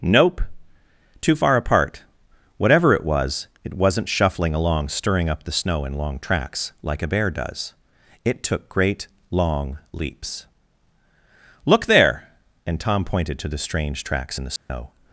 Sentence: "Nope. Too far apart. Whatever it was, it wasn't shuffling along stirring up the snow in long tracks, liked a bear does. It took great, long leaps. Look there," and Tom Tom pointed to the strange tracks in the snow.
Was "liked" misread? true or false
true